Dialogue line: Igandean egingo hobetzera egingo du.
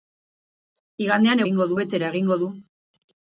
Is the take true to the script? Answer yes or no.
yes